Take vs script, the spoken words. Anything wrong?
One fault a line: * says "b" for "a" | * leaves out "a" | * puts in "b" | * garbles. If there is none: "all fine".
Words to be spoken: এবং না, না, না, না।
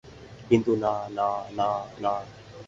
* says "কিন্তু" for "এবং"